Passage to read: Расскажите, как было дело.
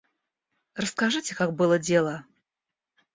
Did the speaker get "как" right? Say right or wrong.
right